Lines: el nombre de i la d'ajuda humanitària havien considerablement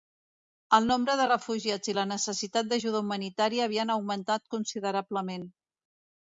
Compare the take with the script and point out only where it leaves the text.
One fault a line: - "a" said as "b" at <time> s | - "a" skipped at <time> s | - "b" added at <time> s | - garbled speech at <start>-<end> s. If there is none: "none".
- "refugiats" added at 1.3 s
- "necessitat" added at 2.1 s
- "augmentat" added at 3.9 s